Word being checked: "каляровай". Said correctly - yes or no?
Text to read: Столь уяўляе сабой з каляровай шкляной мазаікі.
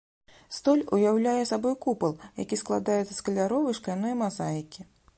yes